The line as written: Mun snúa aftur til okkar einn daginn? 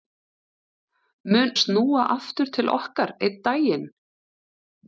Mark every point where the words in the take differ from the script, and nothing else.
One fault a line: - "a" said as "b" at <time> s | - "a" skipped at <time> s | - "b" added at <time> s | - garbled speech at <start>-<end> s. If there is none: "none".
none